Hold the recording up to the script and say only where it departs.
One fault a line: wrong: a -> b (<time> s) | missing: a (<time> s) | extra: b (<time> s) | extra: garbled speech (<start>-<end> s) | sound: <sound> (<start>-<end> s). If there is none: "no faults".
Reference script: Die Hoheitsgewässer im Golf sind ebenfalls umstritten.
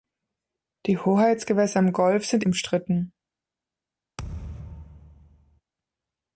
missing: ebenfalls (2.4 s)
sound: thud (4.2-5.6 s)